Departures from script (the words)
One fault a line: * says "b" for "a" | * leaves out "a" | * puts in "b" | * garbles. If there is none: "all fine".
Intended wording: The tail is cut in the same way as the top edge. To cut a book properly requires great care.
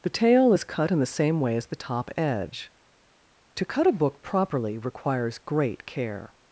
all fine